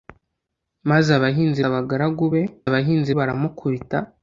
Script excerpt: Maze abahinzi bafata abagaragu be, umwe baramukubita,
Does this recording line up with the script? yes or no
no